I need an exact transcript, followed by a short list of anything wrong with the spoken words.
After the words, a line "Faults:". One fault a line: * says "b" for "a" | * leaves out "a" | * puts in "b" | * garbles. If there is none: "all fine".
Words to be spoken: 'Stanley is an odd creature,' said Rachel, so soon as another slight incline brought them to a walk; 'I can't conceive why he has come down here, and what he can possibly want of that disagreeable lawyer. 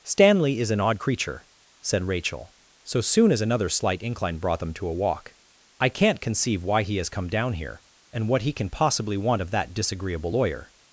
'Stanley is an odd creature,' said Rachel, so soon as another slight incline brought them to a walk; 'I can't conceive why he has come down here, and what he can possibly want of that disagreeable lawyer.
Faults:
all fine